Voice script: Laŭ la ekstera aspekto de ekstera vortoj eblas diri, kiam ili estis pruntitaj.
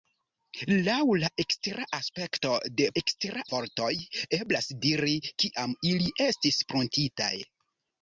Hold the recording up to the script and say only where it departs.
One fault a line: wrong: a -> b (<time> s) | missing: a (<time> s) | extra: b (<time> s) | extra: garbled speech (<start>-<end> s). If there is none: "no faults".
no faults